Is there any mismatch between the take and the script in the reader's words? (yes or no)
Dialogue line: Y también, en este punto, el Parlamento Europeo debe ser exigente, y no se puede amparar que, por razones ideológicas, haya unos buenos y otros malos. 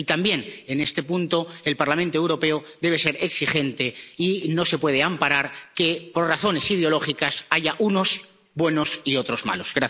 no